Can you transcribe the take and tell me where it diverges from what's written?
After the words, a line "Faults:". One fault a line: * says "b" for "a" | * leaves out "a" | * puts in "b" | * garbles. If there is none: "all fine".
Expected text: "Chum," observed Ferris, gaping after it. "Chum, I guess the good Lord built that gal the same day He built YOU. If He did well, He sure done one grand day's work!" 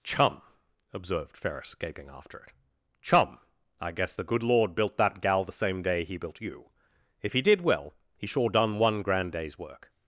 "Chum," observed Ferris, gaping after it. "Chum, I guess the good Lord built that gal the same day He built YOU. If He did well, He sure done one grand day's work!"
Faults:
all fine